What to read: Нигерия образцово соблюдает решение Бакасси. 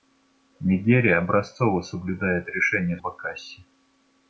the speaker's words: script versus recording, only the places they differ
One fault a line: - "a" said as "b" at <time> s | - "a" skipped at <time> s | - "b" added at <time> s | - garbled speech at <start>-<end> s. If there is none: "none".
none